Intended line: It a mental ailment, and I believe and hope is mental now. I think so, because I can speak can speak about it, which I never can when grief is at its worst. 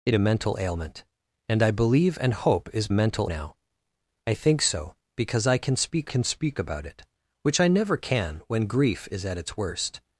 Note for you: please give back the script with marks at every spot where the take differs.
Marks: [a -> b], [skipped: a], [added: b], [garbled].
It a mental ailment, and I believe and hope is mental now. I think so, because I can speak can speak about it, which I never can when grief is at its worst.